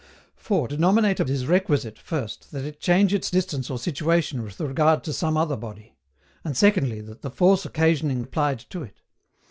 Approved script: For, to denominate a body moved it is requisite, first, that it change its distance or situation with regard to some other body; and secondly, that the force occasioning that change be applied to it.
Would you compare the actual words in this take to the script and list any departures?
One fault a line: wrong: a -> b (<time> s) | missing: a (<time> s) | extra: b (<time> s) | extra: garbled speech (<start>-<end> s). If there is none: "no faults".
missing: to (0.7 s)
missing: body moved it (1.2 s)
missing: that change be (8.2 s)